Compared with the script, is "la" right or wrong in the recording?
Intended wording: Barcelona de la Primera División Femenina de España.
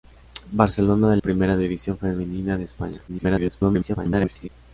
wrong